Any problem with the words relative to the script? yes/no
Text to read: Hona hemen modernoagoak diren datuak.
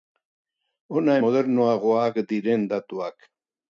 yes